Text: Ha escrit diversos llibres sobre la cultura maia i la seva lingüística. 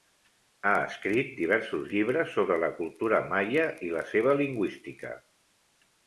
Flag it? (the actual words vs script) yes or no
no